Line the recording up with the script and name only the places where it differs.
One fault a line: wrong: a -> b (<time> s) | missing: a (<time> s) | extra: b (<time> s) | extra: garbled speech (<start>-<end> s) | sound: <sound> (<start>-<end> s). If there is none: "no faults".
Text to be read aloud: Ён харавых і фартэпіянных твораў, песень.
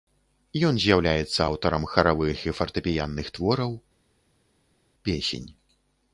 extra: з'яўляецца аўтарам (0.8 s)